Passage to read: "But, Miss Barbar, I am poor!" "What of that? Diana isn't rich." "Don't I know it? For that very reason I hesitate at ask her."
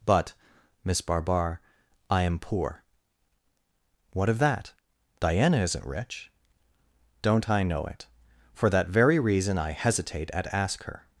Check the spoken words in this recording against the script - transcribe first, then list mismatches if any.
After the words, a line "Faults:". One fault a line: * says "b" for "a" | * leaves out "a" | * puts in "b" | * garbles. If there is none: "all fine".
"But, Miss Barbar, I am poor!" "What of that? Diana isn't rich." "Don't I know it? For that very reason I hesitate at ask her."
Faults:
all fine